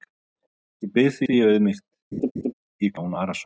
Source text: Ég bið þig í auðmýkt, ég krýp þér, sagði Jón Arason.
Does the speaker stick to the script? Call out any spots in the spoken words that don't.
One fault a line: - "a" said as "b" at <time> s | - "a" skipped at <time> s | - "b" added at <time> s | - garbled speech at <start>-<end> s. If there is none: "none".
- "þig" added at 1.2 s
- "krýp þér sagði" skipped at 3.0 s